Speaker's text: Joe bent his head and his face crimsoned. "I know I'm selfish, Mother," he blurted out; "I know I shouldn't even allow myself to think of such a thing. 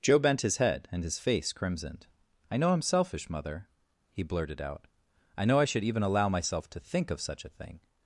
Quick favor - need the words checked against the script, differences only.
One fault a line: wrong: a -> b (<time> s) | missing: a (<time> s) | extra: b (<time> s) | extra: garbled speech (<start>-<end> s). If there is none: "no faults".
wrong: shouldn't -> should (5.7 s)